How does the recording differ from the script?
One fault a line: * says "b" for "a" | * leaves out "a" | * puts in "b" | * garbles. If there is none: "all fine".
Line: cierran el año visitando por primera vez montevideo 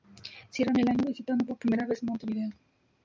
all fine